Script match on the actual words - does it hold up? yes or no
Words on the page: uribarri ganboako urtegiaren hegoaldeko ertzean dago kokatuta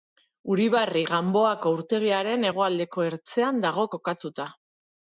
yes